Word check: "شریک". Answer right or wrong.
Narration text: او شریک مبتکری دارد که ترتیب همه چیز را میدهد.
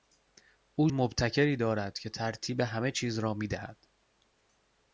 wrong